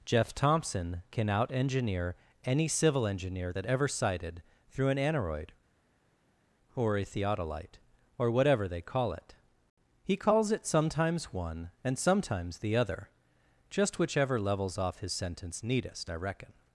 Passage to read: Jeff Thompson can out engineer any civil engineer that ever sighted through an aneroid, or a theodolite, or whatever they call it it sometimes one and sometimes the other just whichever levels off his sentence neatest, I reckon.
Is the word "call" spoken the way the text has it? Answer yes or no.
yes